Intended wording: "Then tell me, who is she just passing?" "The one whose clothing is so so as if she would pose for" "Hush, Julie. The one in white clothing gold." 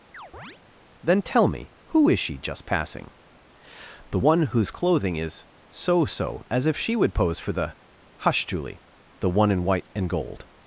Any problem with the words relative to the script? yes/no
yes